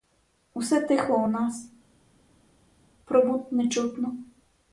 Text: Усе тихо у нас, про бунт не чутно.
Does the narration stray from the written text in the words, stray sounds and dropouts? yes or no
no